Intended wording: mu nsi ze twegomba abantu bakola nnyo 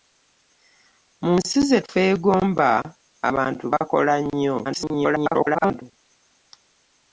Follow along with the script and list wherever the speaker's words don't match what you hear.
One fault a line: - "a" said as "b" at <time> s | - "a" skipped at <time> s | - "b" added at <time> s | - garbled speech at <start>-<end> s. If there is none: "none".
- garbled speech at 4.6-5.8 s